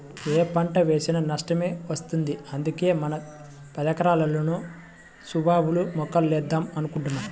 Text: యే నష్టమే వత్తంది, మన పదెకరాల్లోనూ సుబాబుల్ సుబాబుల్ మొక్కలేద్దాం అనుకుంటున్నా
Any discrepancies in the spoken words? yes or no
yes